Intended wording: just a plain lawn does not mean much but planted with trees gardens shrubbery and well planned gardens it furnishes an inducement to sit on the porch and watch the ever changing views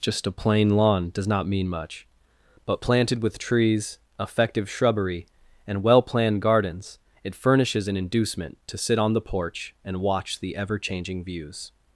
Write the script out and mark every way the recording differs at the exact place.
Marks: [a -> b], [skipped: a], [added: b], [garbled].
just a plain lawn does not mean much but planted with trees [gardens -> effective] shrubbery and well planned gardens it furnishes an inducement to sit on the porch and watch the ever changing views